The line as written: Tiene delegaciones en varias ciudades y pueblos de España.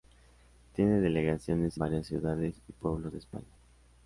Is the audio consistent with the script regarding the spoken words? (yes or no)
no